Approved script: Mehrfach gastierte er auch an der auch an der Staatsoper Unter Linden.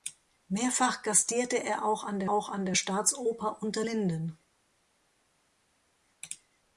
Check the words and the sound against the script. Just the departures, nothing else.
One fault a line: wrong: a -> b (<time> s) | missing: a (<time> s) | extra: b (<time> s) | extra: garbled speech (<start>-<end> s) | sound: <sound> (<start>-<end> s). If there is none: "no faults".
no faults